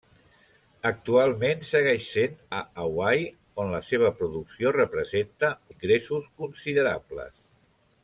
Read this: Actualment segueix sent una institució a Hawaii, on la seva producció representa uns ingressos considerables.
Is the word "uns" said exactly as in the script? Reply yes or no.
no